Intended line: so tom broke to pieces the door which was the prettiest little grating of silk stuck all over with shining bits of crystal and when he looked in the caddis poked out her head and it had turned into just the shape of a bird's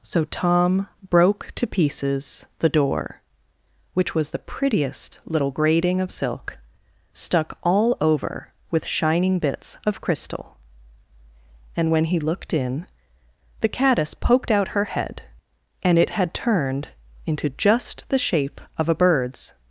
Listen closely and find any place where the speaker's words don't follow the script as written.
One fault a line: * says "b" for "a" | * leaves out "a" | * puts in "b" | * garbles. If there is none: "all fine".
all fine